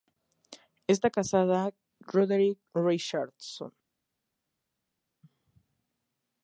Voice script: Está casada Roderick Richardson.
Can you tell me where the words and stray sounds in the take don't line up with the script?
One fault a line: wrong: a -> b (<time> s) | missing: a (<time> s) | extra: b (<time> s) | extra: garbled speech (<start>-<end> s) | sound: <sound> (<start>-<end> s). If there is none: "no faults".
no faults